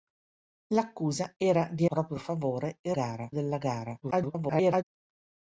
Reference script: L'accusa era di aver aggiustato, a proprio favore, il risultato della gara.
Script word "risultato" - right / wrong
wrong